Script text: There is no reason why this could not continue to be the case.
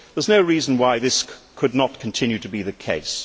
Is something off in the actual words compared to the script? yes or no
no